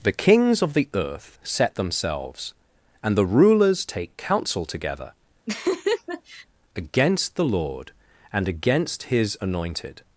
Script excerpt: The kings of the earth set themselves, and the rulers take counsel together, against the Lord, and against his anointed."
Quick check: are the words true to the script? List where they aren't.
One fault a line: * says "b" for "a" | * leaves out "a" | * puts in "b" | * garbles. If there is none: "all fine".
all fine